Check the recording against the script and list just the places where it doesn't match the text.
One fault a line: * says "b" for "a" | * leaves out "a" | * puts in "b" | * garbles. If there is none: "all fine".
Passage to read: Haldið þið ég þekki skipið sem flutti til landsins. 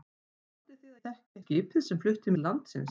all fine